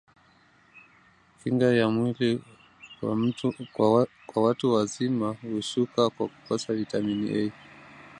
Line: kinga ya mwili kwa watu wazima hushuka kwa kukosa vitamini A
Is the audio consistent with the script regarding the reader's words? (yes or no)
yes